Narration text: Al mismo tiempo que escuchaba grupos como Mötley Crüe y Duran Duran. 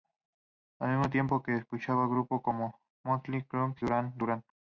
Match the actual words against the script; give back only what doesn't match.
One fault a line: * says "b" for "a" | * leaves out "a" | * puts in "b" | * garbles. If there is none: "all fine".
* leaves out "y"